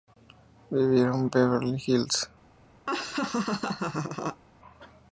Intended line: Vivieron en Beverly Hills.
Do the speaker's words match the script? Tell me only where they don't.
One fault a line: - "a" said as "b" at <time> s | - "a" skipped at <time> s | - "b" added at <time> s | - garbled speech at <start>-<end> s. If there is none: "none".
none